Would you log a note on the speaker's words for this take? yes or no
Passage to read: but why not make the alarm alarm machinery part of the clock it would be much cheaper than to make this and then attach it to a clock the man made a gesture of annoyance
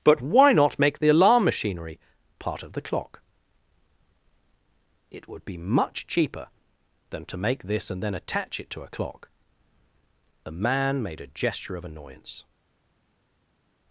yes